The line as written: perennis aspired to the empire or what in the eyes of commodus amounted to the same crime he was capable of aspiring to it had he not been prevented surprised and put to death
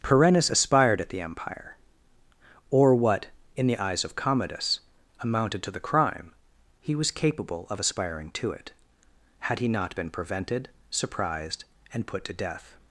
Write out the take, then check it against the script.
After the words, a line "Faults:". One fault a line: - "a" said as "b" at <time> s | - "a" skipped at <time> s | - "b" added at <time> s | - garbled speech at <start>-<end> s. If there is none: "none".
perennis aspired at the empire or what in the eyes of commodus amounted to the crime he was capable of aspiring to it had he not been prevented surprised and put to death
Faults:
- "to" said as "at" at 1.0 s
- "same" skipped at 5.8 s